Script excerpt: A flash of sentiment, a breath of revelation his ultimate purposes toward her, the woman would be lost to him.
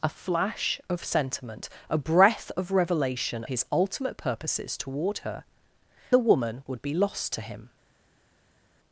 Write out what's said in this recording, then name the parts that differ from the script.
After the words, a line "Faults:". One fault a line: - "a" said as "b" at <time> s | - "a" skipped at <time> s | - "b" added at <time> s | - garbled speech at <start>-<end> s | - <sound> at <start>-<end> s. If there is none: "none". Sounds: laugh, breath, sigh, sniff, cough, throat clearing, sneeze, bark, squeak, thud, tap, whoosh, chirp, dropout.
A flash of sentiment, a breath of revelation his ultimate purposes toward her, the woman would be lost to him.
Faults:
none